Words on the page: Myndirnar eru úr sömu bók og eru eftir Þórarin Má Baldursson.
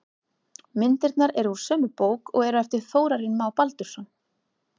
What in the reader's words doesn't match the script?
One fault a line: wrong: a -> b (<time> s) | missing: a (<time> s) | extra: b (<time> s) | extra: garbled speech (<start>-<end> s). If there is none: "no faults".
no faults